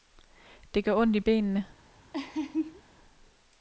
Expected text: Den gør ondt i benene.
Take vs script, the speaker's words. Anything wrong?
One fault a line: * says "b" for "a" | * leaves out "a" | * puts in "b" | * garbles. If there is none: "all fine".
* says "Det" for "Den"